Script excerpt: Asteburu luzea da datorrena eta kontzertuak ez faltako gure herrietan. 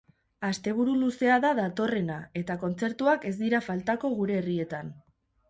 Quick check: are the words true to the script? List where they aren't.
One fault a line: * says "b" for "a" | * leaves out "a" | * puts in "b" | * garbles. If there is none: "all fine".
* puts in "dira"